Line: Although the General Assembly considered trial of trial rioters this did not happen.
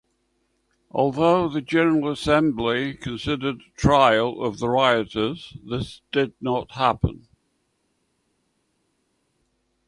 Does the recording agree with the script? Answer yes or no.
no